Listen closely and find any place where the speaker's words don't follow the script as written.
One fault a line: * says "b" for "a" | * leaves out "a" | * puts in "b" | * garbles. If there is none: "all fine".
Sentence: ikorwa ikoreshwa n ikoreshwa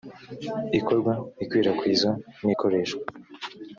* says "ikwirakwizwa" for "ikoreshwa"